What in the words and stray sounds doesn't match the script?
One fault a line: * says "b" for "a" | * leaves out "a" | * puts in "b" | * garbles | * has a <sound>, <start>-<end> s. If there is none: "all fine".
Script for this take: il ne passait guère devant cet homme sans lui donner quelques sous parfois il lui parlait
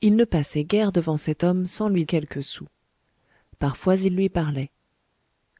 * leaves out "donner"